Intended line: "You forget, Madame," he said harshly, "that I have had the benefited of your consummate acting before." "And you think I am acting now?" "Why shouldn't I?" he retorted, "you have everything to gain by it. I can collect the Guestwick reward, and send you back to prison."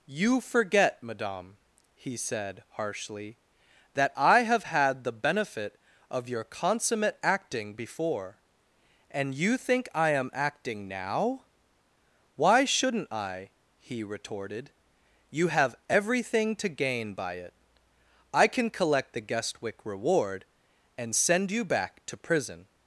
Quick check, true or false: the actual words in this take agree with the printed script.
false